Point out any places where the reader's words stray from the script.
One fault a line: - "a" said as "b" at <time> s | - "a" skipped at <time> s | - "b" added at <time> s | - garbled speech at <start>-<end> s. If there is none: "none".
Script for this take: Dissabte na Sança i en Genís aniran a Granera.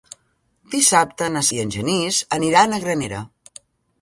- "Sança" skipped at 1.4 s